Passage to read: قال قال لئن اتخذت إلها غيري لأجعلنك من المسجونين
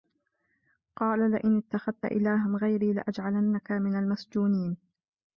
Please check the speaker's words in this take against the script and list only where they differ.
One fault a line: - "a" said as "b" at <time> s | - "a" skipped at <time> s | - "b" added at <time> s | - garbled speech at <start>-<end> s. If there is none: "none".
- "قال" skipped at 1.3 s